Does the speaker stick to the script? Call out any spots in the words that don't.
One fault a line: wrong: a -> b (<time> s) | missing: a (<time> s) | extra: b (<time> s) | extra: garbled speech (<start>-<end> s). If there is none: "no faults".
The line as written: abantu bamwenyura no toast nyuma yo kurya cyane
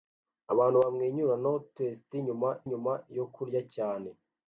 extra: nyuma (2.7 s)